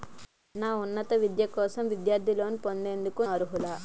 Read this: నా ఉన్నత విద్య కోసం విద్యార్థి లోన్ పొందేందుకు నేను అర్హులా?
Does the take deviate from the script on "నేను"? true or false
true